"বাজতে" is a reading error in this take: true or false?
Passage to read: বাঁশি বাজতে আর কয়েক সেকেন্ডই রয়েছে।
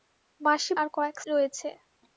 true